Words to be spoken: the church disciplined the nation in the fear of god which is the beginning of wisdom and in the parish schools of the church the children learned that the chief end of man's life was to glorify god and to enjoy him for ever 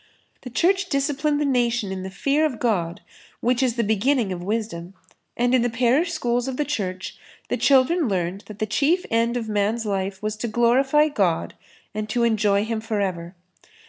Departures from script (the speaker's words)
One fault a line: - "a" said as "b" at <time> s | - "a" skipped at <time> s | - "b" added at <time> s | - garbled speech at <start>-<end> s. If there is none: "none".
none